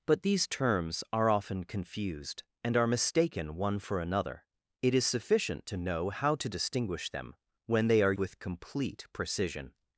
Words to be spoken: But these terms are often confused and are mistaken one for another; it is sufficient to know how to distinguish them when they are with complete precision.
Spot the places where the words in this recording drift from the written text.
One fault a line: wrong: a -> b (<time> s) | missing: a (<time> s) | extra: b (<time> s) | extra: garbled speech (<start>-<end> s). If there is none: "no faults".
no faults